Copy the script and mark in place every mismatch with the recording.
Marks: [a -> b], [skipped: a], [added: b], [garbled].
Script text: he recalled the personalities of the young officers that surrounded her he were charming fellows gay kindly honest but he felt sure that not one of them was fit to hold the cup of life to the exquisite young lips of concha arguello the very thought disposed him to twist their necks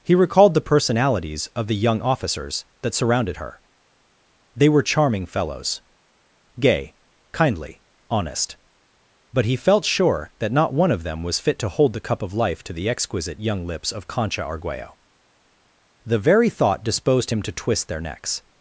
he recalled the personalities of the young officers that surrounded her [he -> they] were charming fellows gay kindly honest but he felt sure that not one of them was fit to hold the cup of life to the exquisite young lips of concha arguello the very thought disposed him to twist their necks